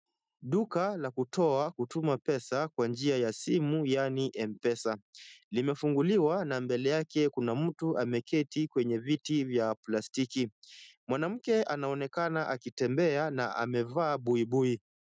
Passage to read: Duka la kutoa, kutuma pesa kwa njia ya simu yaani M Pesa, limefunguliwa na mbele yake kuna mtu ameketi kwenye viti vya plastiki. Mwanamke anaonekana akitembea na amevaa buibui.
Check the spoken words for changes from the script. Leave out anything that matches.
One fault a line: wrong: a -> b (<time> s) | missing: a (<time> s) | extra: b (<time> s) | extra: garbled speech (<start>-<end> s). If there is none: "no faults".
no faults